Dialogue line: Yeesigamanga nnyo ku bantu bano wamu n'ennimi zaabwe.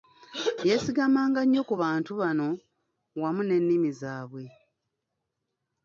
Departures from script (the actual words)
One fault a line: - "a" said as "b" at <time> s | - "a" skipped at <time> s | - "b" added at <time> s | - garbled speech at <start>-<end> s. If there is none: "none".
none